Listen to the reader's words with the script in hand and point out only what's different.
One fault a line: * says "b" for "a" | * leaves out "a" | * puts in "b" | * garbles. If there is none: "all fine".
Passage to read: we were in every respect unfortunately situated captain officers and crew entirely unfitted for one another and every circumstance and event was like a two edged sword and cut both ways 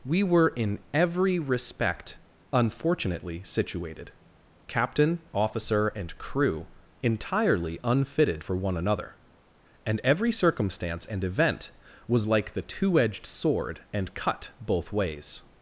* says "officer" for "officers"
* says "the" for "a"